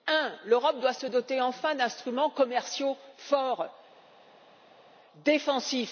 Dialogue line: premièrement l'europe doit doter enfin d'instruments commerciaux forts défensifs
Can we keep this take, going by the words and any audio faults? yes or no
no